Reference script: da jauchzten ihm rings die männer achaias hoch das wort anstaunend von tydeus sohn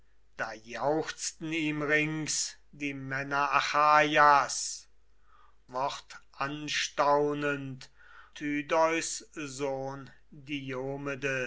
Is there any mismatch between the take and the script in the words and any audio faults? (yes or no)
yes